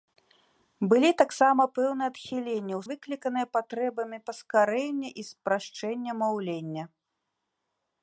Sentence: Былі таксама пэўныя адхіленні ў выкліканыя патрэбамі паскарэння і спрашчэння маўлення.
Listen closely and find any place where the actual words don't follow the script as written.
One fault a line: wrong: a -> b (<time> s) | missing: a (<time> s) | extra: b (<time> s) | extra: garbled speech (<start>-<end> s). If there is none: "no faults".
no faults